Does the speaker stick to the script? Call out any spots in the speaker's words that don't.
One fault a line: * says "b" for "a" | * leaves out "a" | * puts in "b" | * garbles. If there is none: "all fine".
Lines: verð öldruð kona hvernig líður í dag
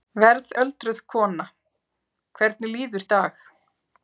all fine